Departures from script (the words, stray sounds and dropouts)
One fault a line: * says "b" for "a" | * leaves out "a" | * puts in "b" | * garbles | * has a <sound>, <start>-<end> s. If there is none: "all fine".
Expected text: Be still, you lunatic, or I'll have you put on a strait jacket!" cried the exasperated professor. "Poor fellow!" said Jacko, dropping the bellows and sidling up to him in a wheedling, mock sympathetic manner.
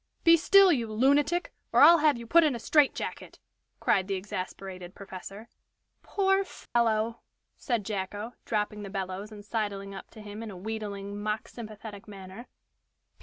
* says "in" for "on"
* has a dropout, 6.7-6.8 s